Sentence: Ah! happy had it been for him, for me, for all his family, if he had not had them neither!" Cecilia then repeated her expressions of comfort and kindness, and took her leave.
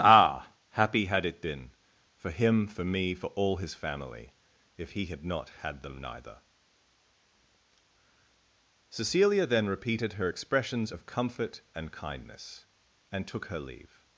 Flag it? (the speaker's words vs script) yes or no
no